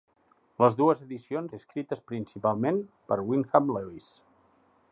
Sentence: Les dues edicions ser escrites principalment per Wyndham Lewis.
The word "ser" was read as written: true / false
true